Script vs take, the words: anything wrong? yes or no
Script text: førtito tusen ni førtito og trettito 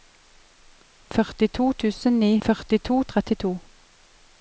no